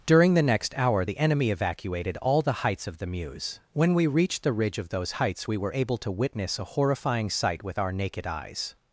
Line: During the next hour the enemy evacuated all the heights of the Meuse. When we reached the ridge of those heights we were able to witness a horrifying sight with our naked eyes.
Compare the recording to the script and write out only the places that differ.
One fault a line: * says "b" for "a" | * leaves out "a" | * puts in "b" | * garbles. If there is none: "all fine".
all fine